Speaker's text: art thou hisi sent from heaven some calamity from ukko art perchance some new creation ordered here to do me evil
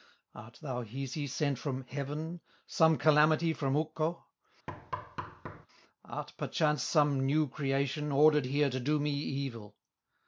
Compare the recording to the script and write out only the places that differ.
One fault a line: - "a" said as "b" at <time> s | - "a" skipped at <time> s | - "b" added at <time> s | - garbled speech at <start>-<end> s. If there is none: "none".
none